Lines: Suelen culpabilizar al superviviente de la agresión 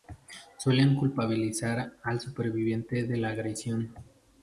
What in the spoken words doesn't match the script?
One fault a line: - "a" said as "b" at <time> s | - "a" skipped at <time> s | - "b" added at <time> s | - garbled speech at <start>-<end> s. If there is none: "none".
none